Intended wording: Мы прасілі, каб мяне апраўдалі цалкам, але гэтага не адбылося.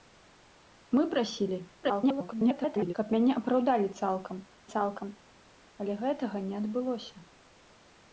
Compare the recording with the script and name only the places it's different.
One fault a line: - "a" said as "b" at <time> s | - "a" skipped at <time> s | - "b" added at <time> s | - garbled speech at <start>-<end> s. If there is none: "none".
- garbled speech at 1.8-2.9 s
- "цалкам" added at 4.8 s